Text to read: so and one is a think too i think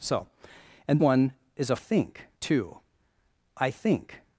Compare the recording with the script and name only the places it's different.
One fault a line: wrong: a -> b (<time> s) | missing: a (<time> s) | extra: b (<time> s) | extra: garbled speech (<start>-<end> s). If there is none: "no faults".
no faults